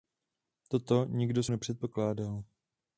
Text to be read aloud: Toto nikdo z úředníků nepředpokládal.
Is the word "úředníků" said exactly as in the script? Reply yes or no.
no